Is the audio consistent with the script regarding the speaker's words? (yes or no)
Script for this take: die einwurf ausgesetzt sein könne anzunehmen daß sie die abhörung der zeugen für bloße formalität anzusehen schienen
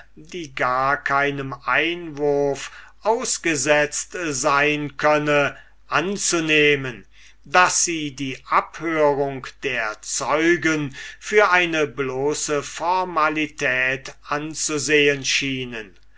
no